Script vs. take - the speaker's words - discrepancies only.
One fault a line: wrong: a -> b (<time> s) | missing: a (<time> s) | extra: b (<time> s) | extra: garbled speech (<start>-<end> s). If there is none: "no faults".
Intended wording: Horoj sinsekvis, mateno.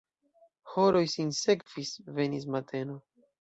extra: venis (2.2 s)